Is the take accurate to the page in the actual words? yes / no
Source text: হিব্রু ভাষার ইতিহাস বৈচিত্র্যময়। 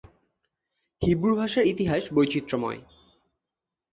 yes